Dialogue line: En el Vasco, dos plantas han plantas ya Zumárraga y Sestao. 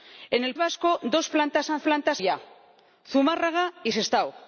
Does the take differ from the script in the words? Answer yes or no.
no